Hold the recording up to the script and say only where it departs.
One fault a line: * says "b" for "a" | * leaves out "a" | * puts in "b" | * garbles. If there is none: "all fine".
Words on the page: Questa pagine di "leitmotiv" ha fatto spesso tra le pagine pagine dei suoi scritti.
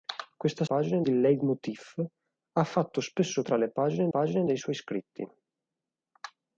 all fine